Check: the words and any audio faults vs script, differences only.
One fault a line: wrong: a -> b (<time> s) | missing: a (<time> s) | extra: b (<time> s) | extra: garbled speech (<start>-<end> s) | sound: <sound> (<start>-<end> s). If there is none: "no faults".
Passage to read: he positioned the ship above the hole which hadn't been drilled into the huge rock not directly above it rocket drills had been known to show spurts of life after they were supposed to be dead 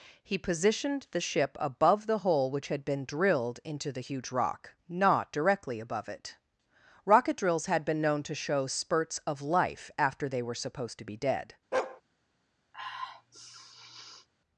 wrong: hadn't -> had (2.7 s)
sound: bark (11.7-12.0 s)
sound: sniff (12.7-14.3 s)